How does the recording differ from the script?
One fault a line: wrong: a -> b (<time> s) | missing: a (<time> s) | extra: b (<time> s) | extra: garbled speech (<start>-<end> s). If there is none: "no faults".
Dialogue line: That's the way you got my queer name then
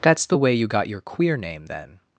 wrong: my -> your (0.9 s)